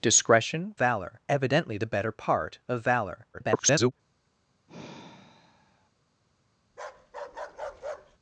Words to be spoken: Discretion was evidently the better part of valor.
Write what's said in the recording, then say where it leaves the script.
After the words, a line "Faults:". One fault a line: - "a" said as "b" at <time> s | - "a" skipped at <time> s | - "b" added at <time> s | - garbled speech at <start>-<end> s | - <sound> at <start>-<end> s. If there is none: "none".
Discretion valor evidently the better part of valor. [garbled]
Faults:
- "was" said as "valor" at 0.8 s
- garbled speech at 3.3-3.9 s
- sigh at 4.7-5.9 s
- bark at 6.7-8.2 s